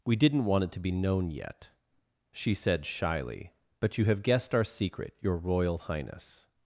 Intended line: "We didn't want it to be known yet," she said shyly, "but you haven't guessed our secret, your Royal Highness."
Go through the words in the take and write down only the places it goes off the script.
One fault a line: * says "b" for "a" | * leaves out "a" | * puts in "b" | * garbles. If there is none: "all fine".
* says "have" for "haven't"